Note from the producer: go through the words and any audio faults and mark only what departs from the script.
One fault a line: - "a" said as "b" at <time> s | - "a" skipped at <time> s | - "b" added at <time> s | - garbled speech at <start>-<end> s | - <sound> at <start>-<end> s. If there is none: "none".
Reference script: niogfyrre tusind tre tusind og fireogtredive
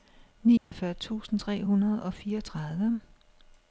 - dropout at 0.6-0.7 s
- "tusind" said as "hundrede" at 1.6 s